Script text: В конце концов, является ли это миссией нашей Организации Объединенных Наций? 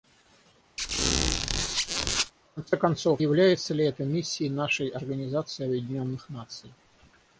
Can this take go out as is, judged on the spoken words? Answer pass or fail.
pass